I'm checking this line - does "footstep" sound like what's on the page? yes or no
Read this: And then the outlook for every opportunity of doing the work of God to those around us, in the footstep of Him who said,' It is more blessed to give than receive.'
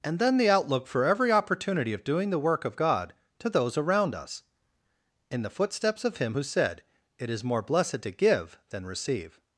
no